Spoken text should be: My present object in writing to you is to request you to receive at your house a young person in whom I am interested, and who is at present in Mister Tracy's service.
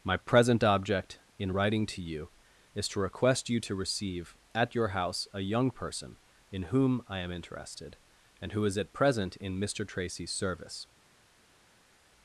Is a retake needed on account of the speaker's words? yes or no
no